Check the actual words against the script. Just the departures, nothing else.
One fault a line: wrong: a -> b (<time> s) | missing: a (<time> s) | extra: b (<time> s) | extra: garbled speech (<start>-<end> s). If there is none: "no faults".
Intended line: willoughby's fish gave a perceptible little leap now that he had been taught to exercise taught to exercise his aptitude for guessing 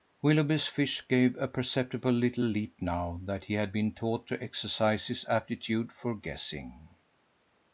missing: taught to exercise (5.1 s)